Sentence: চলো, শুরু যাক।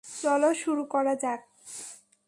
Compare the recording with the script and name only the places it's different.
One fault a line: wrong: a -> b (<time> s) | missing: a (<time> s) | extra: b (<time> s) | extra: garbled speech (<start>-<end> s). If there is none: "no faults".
extra: করা (0.9 s)